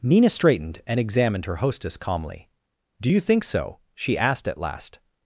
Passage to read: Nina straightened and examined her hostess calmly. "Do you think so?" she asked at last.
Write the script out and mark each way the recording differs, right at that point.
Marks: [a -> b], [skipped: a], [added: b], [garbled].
Nina straightened and examined her hostess calmly. "Do you think so?" she asked at last.